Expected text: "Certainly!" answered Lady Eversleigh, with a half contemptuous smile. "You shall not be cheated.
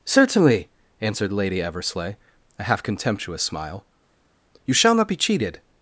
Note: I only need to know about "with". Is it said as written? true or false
false